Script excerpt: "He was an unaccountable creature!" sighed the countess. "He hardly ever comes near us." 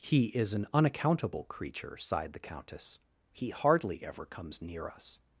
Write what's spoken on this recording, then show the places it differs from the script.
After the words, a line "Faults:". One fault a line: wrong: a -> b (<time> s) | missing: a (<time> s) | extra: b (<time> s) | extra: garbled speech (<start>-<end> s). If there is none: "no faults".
"He is an unaccountable creature!" sighed the countess. "He hardly ever comes near us."
Faults:
wrong: was -> is (0.3 s)